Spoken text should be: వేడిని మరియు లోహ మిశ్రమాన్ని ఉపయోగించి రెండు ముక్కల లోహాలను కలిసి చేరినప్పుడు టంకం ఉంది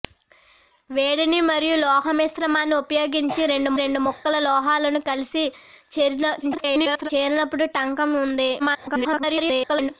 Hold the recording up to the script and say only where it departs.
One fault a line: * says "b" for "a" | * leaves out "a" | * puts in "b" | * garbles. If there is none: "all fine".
* puts in "రెండు"
* garbles
* garbles